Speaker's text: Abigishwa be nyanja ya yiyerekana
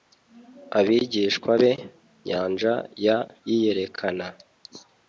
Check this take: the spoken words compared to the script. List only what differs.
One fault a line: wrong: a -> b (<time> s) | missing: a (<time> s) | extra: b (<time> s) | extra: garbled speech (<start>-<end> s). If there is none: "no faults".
no faults